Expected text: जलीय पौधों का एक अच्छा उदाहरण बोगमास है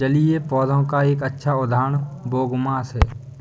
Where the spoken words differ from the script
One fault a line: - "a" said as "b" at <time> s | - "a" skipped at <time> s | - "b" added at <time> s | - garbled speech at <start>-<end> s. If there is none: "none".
none